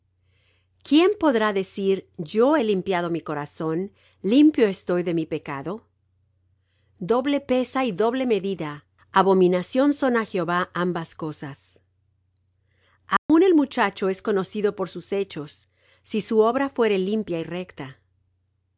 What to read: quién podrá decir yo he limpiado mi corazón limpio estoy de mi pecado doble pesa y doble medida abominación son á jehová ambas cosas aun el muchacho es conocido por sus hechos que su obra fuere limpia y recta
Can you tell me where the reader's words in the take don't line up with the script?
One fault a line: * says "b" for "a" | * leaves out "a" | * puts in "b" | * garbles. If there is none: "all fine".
* says "si" for "que"